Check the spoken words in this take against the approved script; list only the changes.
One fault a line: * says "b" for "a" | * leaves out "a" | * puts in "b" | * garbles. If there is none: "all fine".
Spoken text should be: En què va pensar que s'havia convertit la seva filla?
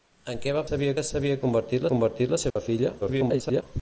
* says "s'havia" for "pensar"
* puts in "convertit"
* garbles